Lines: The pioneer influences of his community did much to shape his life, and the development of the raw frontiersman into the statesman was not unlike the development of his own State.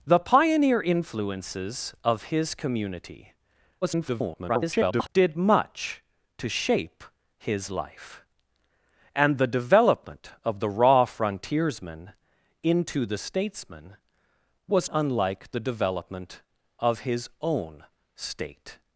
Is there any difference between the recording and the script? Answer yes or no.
yes